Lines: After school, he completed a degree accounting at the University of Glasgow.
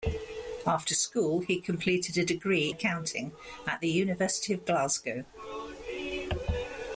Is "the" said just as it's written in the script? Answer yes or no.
yes